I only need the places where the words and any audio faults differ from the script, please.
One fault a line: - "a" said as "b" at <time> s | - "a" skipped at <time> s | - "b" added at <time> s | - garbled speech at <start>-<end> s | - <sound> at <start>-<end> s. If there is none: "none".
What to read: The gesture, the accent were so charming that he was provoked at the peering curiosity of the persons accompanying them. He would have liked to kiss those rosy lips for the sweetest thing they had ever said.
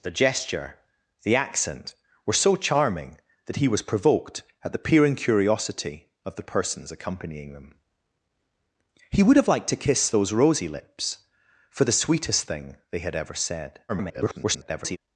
- garbled speech at 13.9-15.0 s